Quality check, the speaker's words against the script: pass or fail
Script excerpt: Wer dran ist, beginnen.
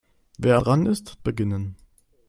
pass